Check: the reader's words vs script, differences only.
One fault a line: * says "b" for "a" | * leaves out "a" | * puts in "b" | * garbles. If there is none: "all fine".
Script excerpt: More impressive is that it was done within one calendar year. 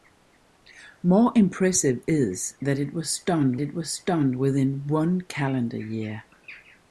* puts in "it was done"